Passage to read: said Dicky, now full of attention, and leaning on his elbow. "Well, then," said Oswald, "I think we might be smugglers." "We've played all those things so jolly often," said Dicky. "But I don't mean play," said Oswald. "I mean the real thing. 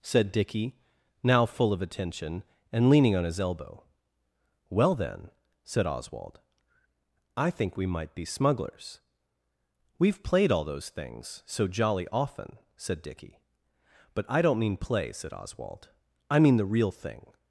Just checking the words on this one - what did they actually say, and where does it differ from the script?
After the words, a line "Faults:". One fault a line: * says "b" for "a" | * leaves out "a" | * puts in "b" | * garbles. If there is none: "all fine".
said Dicky, now full of attention, and leaning on his elbow. "Well, then," said Oswald, "I think we might be smugglers." "We've played all those things so jolly often," said Dicky. "But I don't mean play," said Oswald. "I mean the real thing.
Faults:
all fine